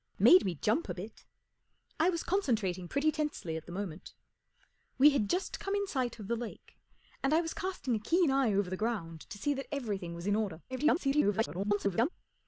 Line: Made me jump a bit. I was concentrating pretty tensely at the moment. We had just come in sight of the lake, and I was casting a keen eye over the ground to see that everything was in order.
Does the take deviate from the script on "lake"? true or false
false